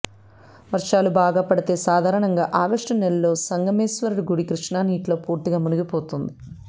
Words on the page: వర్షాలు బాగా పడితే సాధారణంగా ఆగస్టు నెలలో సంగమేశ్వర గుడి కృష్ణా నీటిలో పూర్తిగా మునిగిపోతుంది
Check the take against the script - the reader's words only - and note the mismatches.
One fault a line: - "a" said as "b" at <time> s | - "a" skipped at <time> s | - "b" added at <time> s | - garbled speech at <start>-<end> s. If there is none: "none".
none